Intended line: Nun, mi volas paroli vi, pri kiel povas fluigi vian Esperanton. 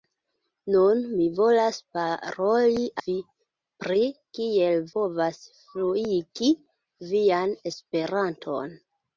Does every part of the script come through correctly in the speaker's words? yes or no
yes